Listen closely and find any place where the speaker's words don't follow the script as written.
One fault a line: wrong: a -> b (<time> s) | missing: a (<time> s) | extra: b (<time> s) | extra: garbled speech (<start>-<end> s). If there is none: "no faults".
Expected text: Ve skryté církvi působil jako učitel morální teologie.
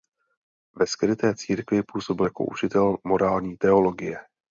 no faults